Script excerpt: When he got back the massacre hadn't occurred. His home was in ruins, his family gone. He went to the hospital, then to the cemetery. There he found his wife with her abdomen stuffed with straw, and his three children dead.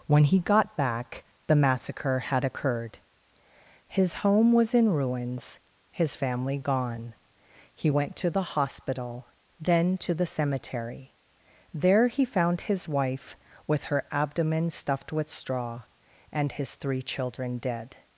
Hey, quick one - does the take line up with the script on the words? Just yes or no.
no